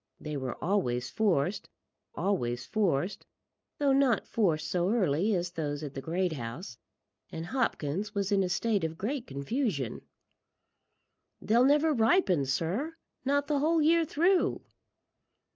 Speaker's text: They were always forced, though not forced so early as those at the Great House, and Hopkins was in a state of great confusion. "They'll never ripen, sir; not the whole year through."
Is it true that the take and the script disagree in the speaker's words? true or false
true